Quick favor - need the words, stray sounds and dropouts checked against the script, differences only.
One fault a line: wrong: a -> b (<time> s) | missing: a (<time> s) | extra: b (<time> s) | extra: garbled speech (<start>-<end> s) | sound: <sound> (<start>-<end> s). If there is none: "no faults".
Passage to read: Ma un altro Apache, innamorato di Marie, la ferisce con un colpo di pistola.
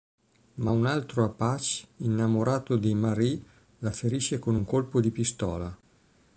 no faults